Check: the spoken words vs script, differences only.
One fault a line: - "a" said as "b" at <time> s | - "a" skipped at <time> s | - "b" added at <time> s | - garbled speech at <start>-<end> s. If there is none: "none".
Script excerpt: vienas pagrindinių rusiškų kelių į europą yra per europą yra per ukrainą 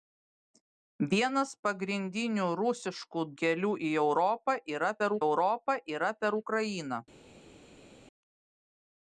none